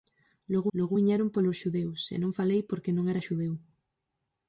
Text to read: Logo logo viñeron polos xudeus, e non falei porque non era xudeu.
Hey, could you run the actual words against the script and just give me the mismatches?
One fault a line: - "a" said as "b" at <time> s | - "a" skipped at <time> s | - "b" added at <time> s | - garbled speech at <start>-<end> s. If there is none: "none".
none